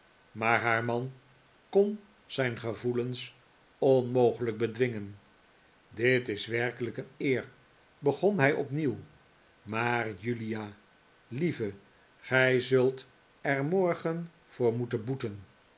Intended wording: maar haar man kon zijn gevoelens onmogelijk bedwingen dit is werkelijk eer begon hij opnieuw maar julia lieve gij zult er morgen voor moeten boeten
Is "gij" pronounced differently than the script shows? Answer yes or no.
no